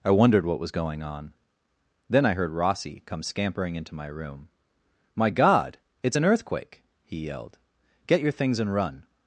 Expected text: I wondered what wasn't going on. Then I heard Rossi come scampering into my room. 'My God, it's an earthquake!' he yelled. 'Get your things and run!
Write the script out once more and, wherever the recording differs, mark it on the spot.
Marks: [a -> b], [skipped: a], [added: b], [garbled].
I wondered what [wasn't -> was] going on. Then I heard Rossi come scampering into my room. 'My God, it's an earthquake!' he yelled. 'Get your things and run!